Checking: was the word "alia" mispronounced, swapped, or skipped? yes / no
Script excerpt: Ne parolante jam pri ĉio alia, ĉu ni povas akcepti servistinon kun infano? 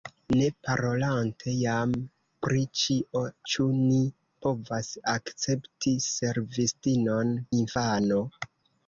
yes